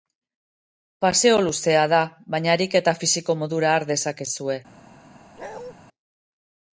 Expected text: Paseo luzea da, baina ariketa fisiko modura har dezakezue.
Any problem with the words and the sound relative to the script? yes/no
yes